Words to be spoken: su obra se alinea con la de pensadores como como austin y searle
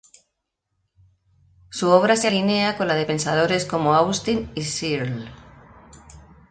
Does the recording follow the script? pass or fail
fail